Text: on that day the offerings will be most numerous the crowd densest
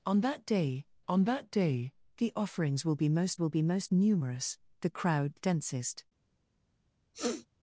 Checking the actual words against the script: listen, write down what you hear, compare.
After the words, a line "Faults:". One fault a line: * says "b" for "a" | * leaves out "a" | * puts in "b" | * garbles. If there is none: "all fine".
on that day on that day the offerings will be most will be most numerous the crowd densest
Faults:
* puts in "on that day"
* puts in "will be most"